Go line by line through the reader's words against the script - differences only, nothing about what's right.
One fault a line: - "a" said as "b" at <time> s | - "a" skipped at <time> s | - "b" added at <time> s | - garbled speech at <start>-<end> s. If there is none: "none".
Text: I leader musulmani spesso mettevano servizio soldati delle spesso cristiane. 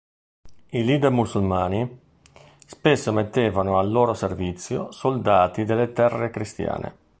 - "al loro" added at 3.8 s
- "spesso" said as "terre" at 5.9 s